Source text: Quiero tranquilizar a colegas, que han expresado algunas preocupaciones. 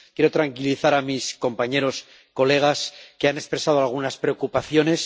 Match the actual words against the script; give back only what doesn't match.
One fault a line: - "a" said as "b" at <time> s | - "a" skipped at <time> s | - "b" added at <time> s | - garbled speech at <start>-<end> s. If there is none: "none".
- "mis compañeros" added at 1.0 s